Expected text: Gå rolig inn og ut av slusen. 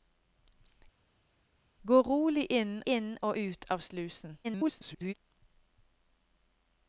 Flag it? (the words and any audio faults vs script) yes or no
yes